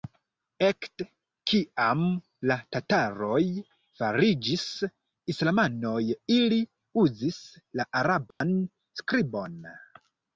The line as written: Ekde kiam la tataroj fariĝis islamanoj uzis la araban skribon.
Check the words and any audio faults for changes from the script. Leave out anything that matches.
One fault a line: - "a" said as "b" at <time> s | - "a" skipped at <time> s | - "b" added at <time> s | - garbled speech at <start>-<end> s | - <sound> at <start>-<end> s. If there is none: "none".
- "ili" added at 6.4 s
- dropout at 8.3-8.4 s